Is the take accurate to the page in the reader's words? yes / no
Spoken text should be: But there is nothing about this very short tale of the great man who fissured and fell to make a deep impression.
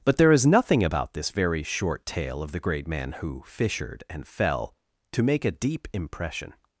yes